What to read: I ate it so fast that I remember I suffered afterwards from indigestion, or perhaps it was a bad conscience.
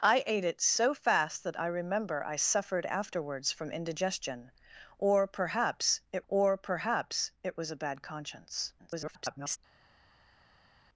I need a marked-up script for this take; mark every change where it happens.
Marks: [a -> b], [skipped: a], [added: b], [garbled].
I ate it so fast that I remember I suffered afterwards from indigestion, or perhaps it [added: or perhaps it] was a bad conscience. [garbled]